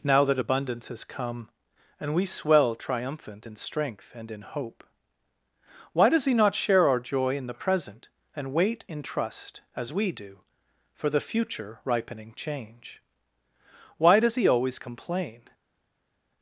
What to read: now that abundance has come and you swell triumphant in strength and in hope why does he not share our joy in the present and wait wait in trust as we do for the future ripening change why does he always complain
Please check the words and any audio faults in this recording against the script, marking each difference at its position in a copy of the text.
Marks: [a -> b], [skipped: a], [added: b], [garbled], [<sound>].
now that abundance has come and [you -> we] swell triumphant in strength and in hope why does he not share our joy in the present and wait [skipped: wait] in trust as we do for the future ripening change why does he always complain